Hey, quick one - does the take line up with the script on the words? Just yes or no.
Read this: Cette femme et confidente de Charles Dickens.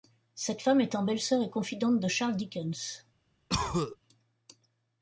no